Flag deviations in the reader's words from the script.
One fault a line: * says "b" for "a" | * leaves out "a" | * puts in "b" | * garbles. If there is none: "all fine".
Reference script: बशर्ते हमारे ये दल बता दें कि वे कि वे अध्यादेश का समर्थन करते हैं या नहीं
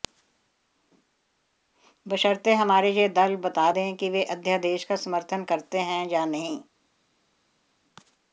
* leaves out "कि वे"